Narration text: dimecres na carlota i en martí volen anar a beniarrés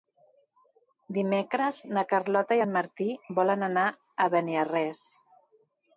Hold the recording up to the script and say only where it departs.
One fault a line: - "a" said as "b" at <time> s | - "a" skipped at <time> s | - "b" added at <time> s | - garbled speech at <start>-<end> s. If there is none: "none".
none